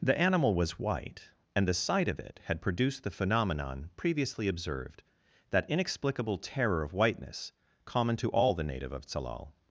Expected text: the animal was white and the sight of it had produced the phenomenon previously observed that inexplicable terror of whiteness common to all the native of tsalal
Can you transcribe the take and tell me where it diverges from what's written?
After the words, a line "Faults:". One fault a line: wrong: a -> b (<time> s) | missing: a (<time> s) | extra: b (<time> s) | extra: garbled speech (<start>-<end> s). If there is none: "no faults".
the animal was white and the sight of it had produced the phenomenon previously observed that inexplicable terror of whiteness common to all the native of tsalal
Faults:
no faults